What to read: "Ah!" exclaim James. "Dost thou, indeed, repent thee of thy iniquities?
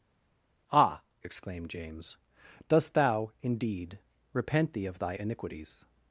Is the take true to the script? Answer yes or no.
no